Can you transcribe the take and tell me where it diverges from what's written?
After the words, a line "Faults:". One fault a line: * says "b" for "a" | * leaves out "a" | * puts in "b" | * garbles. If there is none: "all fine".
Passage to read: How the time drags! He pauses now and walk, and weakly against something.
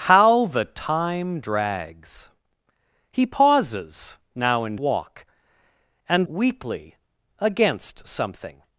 How the time drags! He pauses now and walk, and weakly against something.
Faults:
all fine